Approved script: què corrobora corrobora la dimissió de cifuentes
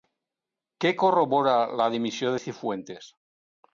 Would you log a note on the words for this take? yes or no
yes